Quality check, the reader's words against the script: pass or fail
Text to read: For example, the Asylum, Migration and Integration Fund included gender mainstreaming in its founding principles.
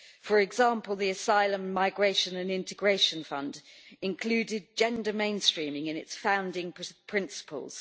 pass